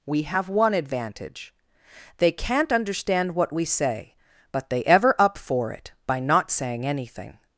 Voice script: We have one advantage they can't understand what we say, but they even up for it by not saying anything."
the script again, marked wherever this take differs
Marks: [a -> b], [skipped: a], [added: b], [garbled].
We have one advantage they can't understand what we say, but they [even -> ever] up for it by not saying anything."